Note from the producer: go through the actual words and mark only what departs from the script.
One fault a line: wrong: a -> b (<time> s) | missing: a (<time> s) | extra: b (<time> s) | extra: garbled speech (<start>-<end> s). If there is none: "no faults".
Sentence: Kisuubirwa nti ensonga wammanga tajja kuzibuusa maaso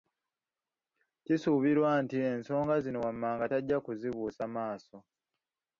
extra: zino (2.8 s)